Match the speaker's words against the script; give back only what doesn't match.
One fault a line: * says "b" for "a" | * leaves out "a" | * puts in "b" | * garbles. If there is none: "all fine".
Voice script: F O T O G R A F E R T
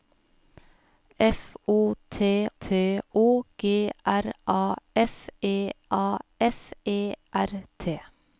* puts in "T"
* puts in "A F E"